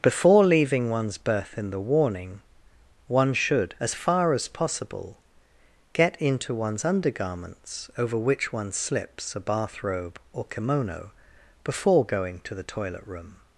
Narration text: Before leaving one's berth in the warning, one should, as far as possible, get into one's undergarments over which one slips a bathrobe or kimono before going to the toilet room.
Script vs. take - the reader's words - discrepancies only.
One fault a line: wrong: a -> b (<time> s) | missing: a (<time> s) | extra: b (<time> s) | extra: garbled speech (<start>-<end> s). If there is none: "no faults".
no faults